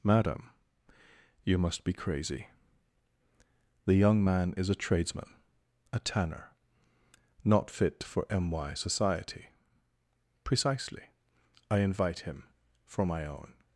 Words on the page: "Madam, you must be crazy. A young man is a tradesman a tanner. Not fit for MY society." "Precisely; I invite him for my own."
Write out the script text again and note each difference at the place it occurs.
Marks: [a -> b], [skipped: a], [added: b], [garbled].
"Madam, you must be crazy. [A -> The] young man is a tradesman a tanner. Not fit for MY society." "Precisely; I invite him for my own."